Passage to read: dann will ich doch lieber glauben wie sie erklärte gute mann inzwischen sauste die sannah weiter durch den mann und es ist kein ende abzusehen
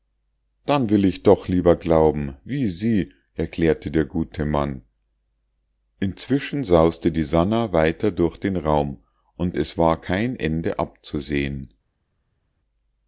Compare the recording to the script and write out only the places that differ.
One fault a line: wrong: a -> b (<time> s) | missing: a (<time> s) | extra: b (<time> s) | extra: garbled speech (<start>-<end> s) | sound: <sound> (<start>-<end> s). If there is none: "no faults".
extra: der (3.9 s)
wrong: mann -> raum (8.6 s)
wrong: ist -> war (9.8 s)